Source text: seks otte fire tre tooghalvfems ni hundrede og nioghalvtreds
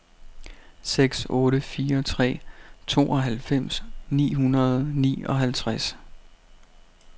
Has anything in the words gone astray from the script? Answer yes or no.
no